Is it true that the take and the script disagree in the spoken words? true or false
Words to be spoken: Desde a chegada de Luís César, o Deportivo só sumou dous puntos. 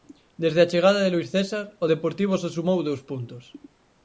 false